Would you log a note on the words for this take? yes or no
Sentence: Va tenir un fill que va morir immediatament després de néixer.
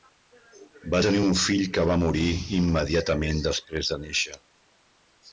no